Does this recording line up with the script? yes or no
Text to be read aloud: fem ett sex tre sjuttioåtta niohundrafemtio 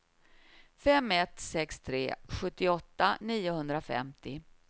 yes